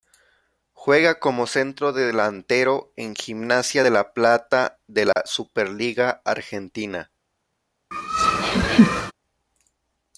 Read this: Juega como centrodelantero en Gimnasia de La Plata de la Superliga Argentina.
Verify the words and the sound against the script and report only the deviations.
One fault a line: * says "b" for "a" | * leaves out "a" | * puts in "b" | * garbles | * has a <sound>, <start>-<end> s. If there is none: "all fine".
* has a dropout, 5.1-5.2 s
* has a laugh, 7.9-9.1 s